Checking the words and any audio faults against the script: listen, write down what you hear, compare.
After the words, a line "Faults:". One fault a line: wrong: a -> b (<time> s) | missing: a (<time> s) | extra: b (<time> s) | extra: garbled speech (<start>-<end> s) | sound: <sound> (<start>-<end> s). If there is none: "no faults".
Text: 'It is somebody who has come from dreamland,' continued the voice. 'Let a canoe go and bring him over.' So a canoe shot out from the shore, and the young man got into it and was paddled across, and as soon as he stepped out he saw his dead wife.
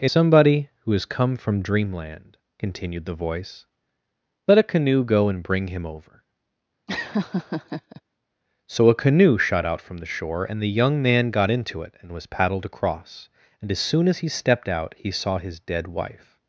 'It somebody who has come from dreamland,' continued the voice. 'Let a canoe go and bring him over.' So a canoe shot out from the shore, and the young man got into it and was paddled across, and as soon as he stepped out he saw his dead wife.
Faults:
missing: is (0.1 s)
sound: laugh (6.9-8.0 s)